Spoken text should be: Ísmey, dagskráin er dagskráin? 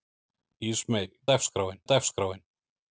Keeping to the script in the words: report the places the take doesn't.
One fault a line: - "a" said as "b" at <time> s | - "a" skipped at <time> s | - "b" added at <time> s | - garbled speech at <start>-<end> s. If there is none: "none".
none